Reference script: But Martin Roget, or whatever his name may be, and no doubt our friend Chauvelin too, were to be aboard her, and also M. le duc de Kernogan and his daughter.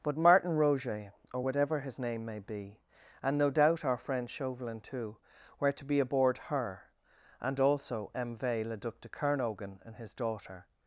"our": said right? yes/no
yes